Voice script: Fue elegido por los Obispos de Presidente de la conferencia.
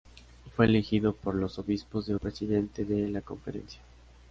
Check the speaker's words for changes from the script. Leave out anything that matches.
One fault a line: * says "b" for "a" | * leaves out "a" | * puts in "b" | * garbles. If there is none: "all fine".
all fine